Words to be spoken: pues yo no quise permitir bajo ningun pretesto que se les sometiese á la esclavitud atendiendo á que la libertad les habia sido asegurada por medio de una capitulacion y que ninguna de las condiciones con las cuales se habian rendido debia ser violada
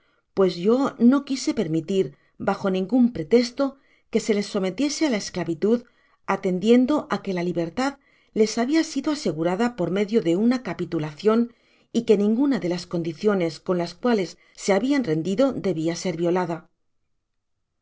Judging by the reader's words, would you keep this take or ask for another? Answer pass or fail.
pass